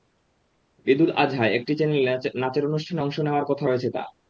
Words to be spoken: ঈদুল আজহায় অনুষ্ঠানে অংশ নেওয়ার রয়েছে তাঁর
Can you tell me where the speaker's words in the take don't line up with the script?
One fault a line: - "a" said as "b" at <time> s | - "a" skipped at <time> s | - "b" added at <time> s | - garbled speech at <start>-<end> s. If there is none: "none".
- "একটি চ্যানেলে নাচের" added at 1.6 s
- "কথা" added at 3.5 s